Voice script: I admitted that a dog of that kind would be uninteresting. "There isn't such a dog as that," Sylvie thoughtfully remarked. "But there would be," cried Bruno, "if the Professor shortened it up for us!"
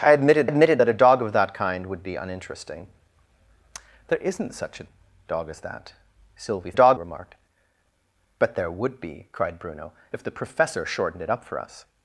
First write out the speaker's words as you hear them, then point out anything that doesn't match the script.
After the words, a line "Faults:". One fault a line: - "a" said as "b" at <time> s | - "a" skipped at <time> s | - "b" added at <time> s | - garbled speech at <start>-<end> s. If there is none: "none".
I admitted admitted that a dog of that kind would be uninteresting. "There isn't such a dog as that," Sylvie dog remarked. "But there would be," cried Bruno, "if the Professor shortened it up for us!"
Faults:
- "admitted" added at 0.4 s
- "thoughtfully" said as "dog" at 6.7 s